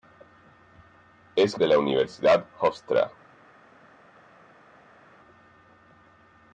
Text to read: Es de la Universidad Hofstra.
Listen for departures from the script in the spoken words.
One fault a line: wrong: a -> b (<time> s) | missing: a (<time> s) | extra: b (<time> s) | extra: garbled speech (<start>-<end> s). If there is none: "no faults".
no faults